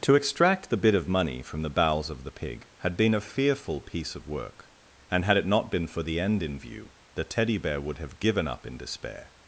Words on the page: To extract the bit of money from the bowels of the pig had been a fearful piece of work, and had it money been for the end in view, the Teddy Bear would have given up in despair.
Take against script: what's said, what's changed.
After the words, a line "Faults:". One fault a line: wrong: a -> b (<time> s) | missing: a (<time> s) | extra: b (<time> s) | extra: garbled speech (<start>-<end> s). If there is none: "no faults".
To extract the bit of money from the bowels of the pig had been a fearful piece of work, and had it not been for the end in view, the Teddy Bear would have given up in despair.
Faults:
wrong: money -> not (5.4 s)